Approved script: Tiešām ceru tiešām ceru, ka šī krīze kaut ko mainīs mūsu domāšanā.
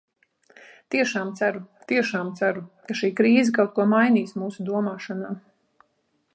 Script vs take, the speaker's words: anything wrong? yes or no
no